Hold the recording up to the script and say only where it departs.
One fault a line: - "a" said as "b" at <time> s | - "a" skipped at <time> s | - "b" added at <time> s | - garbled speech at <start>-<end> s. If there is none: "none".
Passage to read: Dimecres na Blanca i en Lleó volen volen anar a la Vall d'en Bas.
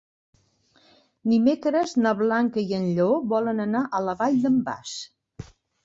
- "volen" skipped at 3.6 s